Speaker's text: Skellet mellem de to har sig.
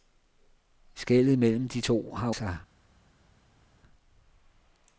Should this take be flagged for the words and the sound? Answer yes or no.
no